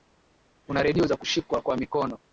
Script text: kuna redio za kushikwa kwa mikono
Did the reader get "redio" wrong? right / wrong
right